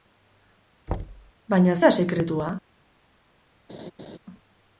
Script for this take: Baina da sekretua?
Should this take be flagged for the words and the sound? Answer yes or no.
yes